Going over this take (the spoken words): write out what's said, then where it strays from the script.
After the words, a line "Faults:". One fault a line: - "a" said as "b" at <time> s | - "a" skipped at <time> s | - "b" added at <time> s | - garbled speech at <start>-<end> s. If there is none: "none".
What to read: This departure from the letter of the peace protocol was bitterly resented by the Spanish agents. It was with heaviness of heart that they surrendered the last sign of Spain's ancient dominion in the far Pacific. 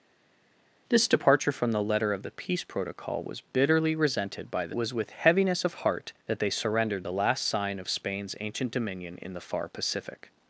This departure from the letter of the peace protocol was bitterly resented by the Was with heaviness of heart that they surrendered the last sign of Spain's ancient dominion in the far Pacific.
Faults:
- "Spanish agents It" skipped at 4.7 s